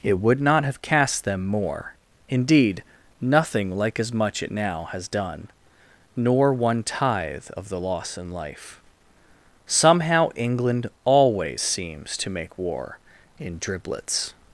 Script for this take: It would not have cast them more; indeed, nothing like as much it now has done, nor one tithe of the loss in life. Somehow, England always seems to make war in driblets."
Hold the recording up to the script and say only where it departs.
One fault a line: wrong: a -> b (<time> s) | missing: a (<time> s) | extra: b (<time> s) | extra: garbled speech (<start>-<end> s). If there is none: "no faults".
no faults